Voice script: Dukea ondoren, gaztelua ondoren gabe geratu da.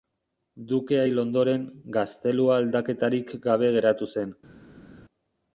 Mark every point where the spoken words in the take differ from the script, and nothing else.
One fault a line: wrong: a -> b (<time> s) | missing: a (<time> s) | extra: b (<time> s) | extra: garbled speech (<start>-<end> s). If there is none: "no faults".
extra: hil (1.1 s)
wrong: ondoren -> aldaketarik (2.6 s)
wrong: da -> zen (4.1 s)